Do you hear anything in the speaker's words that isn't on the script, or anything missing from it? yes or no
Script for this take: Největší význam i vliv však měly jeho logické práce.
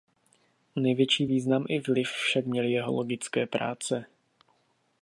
no